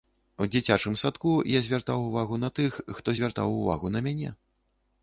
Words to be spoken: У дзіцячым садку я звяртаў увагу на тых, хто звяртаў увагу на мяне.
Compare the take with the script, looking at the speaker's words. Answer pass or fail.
pass